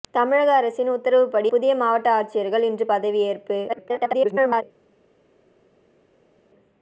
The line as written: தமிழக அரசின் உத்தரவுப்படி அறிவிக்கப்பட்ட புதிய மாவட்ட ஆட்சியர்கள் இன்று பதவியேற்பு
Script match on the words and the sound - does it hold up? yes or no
no